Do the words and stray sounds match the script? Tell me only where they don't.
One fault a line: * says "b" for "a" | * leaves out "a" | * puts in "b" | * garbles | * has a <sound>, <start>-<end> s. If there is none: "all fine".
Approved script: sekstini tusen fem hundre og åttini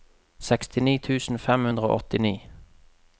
all fine